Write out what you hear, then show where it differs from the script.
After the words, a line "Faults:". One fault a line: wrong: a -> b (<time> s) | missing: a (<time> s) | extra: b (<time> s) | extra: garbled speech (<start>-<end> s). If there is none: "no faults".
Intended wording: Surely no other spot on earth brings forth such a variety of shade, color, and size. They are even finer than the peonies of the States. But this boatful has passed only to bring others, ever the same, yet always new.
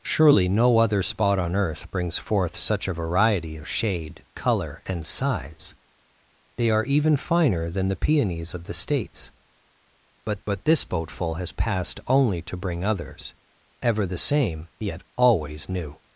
Surely no other spot on earth brings forth such a variety of shade, color, and size. They are even finer than the peonies of the States. But but this boatful has passed only to bring others, ever the same, yet always new.
Faults:
extra: but (10.5 s)